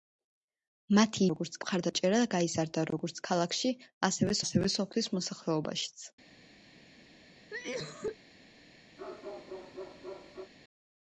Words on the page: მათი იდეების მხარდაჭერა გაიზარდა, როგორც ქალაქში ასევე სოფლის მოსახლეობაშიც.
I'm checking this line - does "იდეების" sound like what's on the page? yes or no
no